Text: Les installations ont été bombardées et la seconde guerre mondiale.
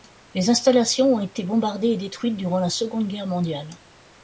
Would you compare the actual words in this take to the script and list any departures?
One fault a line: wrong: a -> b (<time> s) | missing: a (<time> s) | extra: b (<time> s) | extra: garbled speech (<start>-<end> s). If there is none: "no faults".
extra: détruites durant (2.0 s)